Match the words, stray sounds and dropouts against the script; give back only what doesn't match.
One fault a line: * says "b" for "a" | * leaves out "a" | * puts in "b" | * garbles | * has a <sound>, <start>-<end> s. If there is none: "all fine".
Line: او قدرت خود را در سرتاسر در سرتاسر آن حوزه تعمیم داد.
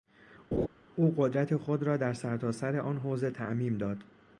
* has a laugh, 0.5-0.7 s
* leaves out "در سرتاسر"